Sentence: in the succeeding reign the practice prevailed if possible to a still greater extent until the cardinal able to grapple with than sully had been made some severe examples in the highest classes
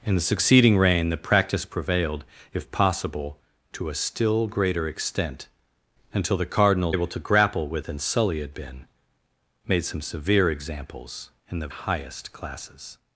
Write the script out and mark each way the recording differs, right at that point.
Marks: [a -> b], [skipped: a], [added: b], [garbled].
in the succeeding reign the practice prevailed if possible to a still greater extent until the cardinal able to grapple with than sully had been made some severe examples in the highest classes